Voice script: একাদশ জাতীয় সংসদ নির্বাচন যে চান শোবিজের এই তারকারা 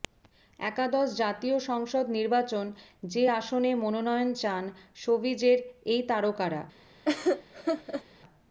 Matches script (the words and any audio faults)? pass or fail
fail